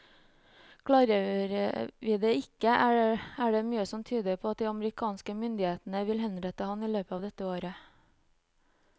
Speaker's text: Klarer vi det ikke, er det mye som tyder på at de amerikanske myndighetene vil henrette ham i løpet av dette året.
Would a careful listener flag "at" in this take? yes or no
no